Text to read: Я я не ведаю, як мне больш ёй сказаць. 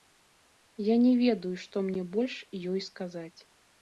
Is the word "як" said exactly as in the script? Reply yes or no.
no